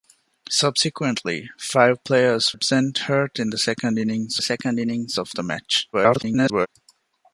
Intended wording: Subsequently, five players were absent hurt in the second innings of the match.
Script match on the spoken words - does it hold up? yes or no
no